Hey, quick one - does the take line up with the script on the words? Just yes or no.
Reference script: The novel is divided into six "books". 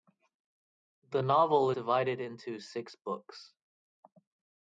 no